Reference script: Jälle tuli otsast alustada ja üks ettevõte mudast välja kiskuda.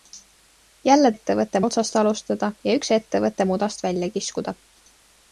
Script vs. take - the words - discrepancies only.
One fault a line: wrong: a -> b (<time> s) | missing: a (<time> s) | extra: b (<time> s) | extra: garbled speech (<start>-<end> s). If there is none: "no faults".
wrong: tuli -> ettevõte (1.1 s)